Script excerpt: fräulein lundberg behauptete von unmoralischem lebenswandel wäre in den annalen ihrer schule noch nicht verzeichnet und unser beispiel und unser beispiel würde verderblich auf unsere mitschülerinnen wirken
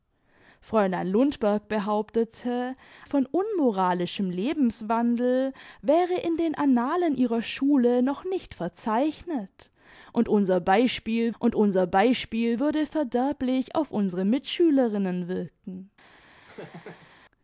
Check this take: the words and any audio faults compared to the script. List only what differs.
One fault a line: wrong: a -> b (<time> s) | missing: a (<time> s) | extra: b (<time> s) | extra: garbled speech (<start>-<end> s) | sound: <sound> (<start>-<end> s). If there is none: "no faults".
sound: laugh (16.5-17.1 s)